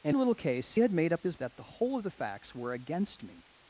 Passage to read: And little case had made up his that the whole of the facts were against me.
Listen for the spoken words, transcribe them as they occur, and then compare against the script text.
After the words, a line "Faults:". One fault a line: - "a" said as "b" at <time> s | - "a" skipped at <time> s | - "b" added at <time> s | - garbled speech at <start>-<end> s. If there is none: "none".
And little case had made up his that the whole of the facts were against me.
Faults:
none